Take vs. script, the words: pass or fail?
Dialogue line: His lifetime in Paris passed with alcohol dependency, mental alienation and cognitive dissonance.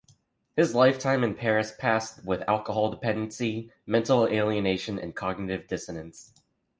pass